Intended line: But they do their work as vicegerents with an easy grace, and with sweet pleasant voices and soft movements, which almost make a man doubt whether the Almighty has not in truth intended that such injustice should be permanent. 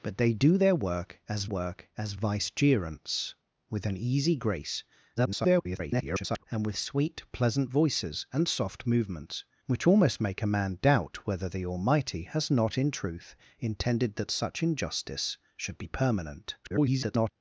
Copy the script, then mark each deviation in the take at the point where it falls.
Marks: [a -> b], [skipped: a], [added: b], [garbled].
But they do their work as [added: work as] vicegerents with an easy grace, [garbled] and with sweet pleasant voices and soft movements, which almost make a man doubt whether the Almighty has not in truth intended that such injustice should be permanent. [garbled]